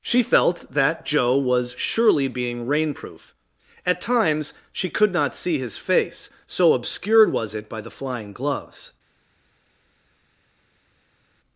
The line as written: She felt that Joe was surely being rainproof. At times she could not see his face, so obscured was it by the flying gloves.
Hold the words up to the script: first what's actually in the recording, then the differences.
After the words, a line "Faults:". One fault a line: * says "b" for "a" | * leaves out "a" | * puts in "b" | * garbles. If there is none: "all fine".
She felt that Joe was surely being rainproof. At times she could not see his face, so obscured was it by the flying gloves.
Faults:
all fine